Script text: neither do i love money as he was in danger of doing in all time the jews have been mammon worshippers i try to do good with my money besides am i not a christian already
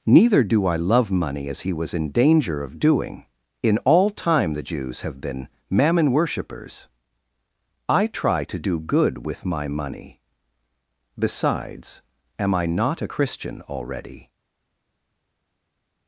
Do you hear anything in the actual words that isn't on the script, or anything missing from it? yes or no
no